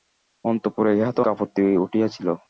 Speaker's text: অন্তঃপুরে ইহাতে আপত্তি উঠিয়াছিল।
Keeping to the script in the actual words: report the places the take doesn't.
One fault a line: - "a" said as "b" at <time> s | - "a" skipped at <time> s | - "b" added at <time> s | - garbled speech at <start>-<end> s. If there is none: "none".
none